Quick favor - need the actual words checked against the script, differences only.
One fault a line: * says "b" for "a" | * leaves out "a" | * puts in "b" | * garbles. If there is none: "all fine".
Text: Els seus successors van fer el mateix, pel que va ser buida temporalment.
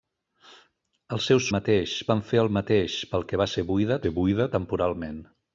* says "mateix" for "successors"
* puts in "ser buida"